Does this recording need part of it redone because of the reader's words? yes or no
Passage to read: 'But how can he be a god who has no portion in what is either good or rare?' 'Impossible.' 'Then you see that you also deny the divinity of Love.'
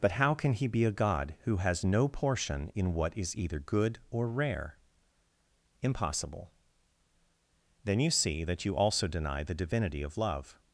no